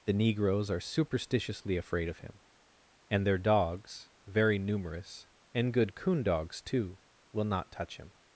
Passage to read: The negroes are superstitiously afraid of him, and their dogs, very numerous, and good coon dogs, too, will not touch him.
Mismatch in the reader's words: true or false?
false